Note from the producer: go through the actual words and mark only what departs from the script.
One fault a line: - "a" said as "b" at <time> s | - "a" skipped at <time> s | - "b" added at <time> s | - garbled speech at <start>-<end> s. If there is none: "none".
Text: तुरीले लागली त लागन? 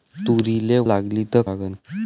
none